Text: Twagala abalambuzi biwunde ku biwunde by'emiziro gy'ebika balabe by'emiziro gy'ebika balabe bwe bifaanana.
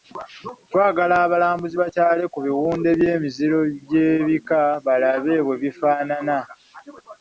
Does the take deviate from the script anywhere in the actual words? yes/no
yes